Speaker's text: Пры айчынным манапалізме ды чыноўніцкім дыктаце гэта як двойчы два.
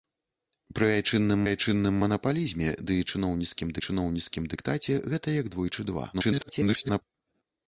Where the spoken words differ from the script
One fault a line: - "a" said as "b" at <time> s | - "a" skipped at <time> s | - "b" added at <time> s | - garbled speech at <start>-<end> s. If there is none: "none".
- "айчынным" added at 1.5 s
- "чыноўніцкім" added at 3.9 s
- garbled speech at 6.1-7.0 s